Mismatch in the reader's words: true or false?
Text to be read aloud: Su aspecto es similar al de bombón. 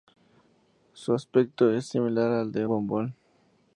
false